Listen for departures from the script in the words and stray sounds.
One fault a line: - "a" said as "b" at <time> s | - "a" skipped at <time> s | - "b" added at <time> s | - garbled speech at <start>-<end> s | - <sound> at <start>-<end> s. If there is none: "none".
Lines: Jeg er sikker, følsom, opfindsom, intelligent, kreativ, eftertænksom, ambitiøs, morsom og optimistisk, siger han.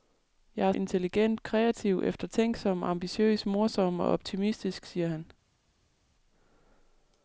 - "sikker følsom opfindsom" skipped at 0.7 s